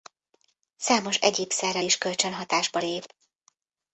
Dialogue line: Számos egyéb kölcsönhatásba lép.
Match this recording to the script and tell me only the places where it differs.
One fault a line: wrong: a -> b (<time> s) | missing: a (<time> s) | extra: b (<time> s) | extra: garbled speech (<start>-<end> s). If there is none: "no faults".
extra: szerrel is (1.5 s)